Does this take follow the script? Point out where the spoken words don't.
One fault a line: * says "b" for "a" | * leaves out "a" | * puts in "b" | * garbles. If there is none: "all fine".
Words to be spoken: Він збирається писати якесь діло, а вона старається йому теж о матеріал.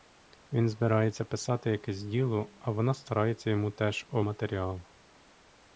all fine